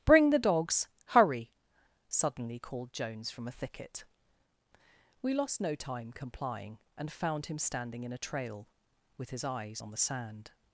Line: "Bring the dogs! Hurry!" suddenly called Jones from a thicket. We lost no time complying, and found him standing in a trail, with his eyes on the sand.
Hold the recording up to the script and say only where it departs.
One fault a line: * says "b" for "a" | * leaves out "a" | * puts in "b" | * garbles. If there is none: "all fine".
all fine